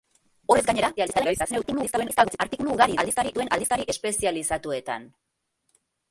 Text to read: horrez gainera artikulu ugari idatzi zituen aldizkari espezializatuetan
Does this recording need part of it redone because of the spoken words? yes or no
yes